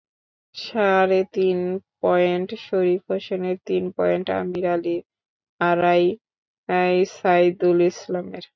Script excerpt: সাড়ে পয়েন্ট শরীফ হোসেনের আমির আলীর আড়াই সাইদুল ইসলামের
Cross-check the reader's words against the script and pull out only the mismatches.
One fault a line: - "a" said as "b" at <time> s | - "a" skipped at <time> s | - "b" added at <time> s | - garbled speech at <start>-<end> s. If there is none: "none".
- "তিন" added at 1.4 s
- "তিন পয়েন্ট" added at 3.6 s